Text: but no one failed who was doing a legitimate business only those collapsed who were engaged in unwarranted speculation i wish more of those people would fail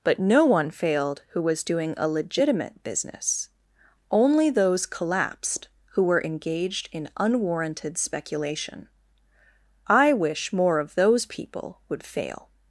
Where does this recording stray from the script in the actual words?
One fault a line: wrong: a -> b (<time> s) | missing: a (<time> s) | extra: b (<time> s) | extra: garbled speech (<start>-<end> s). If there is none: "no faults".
no faults